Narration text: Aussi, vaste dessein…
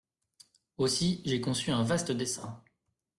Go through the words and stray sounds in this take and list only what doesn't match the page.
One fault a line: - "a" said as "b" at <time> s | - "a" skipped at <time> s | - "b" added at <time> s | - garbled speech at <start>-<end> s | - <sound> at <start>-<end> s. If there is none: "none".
- "j'ai conçu un" added at 1.2 s